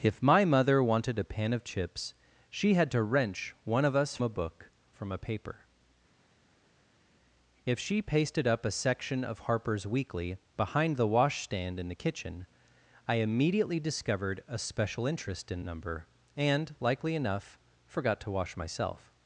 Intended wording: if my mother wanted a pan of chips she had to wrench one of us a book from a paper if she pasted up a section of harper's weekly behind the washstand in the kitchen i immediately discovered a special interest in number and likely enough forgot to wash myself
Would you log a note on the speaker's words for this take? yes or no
no